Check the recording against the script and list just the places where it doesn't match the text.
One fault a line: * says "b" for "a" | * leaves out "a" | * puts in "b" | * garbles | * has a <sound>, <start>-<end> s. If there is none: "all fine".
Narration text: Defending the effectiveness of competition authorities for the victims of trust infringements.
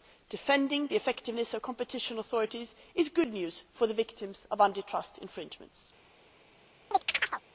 * puts in "is good news"
* puts in "anti"
* has a chirp, 6.9-7.4 s